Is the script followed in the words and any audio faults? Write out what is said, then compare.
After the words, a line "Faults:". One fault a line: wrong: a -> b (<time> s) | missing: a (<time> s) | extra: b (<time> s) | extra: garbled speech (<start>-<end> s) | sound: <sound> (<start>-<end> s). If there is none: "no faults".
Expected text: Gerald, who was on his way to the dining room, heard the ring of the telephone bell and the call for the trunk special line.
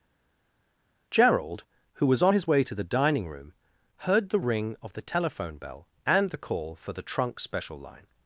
Gerald, who was on his way to the dining room, heard the ring of the telephone bell and the call for the trunk special line.
Faults:
no faults